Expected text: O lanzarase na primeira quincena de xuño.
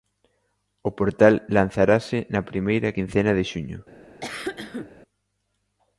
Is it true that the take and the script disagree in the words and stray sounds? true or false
true